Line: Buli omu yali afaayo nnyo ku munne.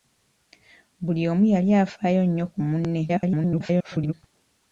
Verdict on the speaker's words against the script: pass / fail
fail